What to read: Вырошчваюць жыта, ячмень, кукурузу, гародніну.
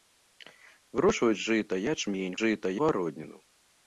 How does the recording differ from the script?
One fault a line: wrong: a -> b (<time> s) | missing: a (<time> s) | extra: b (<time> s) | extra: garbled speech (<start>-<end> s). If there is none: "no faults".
wrong: кукурузу -> жыта (2.4 s)